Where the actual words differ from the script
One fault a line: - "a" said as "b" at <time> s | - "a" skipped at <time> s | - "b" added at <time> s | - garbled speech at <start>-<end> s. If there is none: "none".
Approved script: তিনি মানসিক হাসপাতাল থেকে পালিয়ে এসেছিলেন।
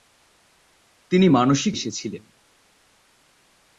- "হাসপাতাল থেকে পালিয়ে" skipped at 1.7 s